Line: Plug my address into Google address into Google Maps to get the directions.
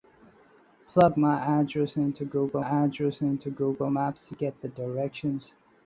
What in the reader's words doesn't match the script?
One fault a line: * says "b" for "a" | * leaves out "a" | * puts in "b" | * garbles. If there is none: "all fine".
all fine